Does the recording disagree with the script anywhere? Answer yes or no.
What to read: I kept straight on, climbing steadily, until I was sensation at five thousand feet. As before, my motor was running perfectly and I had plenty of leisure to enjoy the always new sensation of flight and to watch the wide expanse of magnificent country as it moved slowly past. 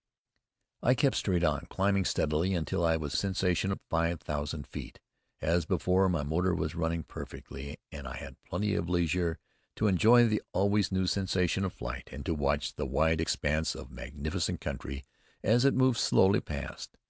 no